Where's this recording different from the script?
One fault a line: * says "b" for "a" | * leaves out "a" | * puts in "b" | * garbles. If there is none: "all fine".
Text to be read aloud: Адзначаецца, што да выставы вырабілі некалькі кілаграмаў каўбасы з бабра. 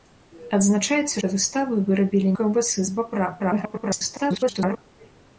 * leaves out "што"
* leaves out "некалькі кілаграмаў"
* garbles